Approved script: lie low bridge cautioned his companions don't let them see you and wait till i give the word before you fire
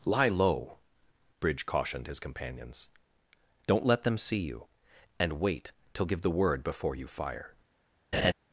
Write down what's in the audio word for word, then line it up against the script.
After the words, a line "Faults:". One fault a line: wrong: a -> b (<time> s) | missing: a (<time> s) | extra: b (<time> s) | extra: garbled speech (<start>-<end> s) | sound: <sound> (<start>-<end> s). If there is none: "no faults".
lie low bridge cautioned his companions don't let them see you and wait till give the word before you fire
Faults:
missing: i (6.1 s)
sound: laugh (8.1-8.3 s)